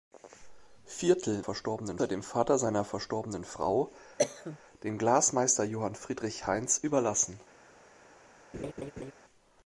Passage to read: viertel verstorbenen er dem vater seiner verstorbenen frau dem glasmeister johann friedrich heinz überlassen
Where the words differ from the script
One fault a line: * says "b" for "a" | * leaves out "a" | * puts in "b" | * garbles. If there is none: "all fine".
all fine